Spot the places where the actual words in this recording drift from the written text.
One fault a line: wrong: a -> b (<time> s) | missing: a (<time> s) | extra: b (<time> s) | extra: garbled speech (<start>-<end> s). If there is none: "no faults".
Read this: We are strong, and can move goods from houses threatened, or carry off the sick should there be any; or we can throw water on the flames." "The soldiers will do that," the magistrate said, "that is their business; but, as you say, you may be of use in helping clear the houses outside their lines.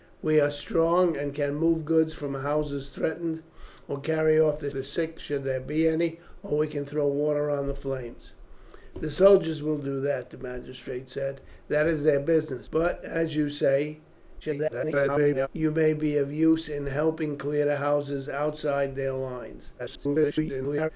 extra: the (4.7 s)
extra: garbled speech (14.4-15.5 s)
extra: garbled speech (19.8-20.9 s)